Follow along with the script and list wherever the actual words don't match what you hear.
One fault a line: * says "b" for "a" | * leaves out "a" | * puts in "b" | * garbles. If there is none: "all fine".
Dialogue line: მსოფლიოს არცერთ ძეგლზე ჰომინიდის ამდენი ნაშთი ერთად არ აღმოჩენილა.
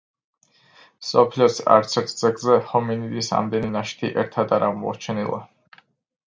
all fine